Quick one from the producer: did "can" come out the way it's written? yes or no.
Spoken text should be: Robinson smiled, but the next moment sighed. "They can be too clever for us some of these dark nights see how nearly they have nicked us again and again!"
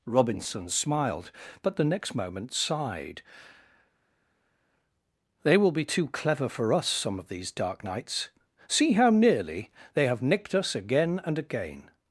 no